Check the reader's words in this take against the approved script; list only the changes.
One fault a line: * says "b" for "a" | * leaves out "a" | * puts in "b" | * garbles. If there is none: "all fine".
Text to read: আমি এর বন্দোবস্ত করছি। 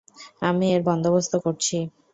all fine